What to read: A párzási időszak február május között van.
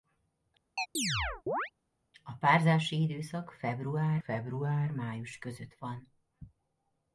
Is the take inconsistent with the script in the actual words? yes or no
yes